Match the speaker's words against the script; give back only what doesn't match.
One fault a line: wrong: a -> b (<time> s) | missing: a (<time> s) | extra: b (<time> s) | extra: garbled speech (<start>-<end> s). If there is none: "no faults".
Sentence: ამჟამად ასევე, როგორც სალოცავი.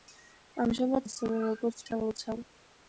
no faults